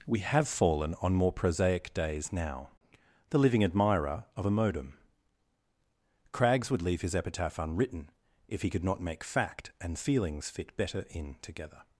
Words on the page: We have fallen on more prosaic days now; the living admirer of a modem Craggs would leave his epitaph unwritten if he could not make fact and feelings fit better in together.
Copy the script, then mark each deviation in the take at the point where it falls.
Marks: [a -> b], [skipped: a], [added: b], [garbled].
We have fallen on more prosaic days now; the living admirer of a modem Craggs would leave his epitaph unwritten if he could not make fact and feelings fit better in together.